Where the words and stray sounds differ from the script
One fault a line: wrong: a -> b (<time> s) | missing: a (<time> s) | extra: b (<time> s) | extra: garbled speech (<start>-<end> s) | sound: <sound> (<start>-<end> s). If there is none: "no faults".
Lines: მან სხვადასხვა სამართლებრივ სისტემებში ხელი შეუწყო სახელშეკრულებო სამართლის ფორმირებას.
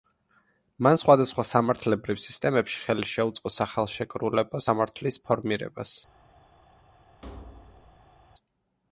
sound: thud (7.2-8.2 s)